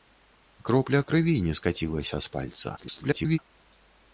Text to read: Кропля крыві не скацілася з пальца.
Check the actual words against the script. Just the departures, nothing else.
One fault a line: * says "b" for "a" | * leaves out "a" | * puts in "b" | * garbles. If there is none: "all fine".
* garbles